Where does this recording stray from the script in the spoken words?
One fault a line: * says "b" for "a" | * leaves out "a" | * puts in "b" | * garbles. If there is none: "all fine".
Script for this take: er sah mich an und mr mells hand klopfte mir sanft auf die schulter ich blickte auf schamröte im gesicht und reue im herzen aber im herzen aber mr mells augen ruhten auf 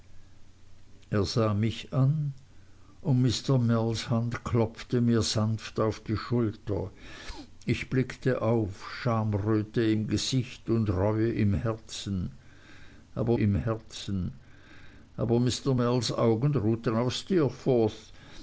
all fine